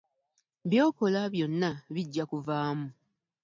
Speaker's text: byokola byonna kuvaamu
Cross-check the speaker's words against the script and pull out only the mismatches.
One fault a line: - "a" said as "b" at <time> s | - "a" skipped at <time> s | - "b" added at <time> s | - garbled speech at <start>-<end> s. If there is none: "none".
- "bijja" added at 1.9 s